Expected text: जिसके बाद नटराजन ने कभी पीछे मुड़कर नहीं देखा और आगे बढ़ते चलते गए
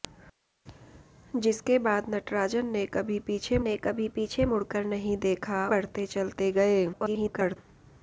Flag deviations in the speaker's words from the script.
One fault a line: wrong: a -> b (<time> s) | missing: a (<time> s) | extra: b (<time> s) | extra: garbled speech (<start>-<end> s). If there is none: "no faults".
extra: ने कभी पीछे (3.6 s)
missing: और आगे (5.7 s)
extra: garbled speech (6.9-7.6 s)